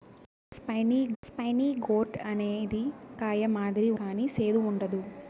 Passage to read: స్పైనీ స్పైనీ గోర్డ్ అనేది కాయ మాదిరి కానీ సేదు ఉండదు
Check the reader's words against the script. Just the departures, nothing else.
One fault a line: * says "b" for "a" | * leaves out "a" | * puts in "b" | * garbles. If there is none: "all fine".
all fine